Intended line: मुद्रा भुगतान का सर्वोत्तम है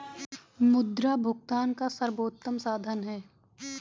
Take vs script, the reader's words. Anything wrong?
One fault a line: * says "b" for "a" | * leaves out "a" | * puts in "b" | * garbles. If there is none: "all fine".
* puts in "साधन"